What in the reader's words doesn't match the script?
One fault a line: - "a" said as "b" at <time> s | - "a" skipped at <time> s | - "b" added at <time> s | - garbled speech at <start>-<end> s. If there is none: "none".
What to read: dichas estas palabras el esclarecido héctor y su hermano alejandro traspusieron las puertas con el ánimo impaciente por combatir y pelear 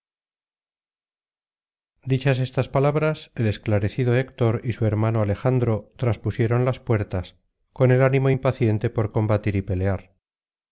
none